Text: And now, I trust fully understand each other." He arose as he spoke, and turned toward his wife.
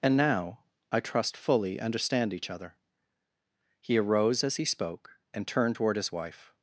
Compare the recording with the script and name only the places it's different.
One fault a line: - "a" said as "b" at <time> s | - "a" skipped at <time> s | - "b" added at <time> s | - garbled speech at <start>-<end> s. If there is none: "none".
none